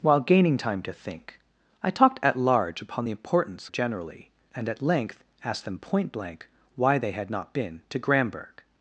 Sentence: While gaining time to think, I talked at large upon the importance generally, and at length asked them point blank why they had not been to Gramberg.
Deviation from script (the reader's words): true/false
false